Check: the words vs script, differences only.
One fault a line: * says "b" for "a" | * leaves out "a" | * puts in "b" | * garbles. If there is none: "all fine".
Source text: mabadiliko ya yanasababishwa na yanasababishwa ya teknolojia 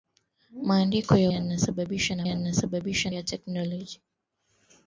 all fine